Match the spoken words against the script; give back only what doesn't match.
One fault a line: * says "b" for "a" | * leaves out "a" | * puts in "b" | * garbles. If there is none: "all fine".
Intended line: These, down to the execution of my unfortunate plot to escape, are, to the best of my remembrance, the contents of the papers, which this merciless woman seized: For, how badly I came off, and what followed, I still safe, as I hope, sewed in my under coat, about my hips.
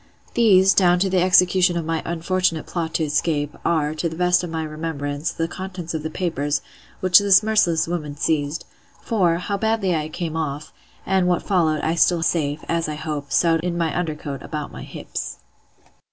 all fine